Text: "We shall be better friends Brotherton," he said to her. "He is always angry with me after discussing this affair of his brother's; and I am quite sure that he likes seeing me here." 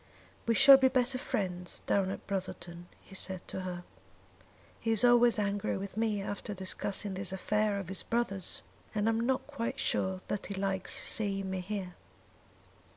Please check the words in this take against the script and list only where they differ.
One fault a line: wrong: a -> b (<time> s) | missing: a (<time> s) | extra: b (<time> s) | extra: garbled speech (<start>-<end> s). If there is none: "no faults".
extra: down at (1.9 s)
extra: not (9.2 s)